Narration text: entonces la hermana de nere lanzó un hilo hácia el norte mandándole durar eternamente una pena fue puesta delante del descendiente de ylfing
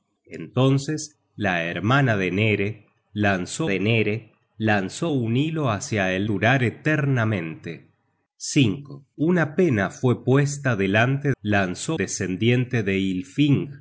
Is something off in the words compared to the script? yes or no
yes